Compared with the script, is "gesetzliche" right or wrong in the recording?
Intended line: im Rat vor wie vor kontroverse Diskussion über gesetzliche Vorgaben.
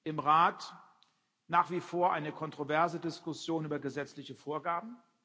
right